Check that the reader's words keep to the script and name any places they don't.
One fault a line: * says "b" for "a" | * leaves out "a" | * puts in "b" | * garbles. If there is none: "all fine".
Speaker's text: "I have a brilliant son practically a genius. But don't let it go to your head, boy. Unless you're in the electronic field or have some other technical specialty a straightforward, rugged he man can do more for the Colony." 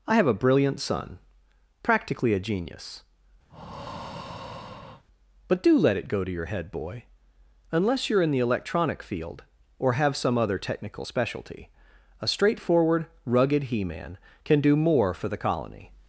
* says "do" for "don't"